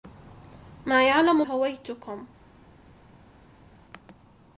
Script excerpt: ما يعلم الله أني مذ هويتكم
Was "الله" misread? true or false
true